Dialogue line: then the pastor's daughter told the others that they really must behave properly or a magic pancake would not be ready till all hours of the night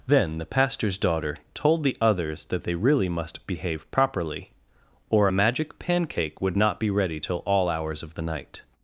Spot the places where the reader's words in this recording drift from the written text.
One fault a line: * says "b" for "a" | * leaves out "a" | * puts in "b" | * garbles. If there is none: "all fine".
all fine